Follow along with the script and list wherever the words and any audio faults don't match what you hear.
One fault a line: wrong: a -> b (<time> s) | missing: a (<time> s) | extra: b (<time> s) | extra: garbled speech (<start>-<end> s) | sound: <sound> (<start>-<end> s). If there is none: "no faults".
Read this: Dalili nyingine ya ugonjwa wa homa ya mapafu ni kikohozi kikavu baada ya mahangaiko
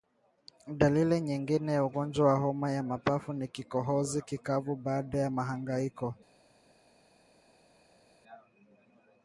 no faults